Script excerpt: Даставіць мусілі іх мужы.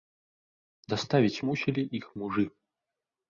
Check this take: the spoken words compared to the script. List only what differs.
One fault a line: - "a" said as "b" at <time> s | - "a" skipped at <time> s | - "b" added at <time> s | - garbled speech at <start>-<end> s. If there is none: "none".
none